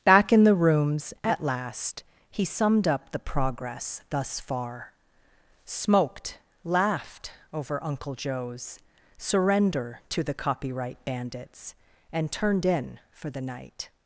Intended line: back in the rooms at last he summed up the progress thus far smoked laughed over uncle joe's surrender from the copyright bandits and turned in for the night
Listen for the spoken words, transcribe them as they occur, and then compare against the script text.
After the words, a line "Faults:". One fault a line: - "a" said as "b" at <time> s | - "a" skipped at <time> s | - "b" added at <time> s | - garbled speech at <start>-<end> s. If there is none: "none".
back in the rooms at last he summed up the progress thus far smoked laughed over uncle joe's surrender to the copyright bandits and turned in for the night
Faults:
- "from" said as "to" at 10.1 s